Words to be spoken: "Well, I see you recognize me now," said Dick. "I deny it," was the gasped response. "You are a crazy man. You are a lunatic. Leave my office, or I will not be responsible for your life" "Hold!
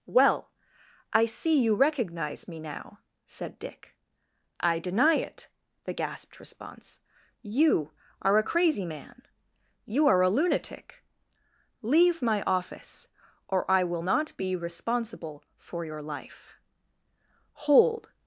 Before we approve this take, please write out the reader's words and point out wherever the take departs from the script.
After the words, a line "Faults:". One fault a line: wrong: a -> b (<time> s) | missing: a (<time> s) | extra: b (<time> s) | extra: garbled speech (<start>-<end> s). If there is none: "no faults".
"Well, I see you recognize me now," said Dick. "I deny it," the gasped response. "You are a crazy man. You are a lunatic. Leave my office, or I will not be responsible for your life" "Hold!
Faults:
missing: was (5.5 s)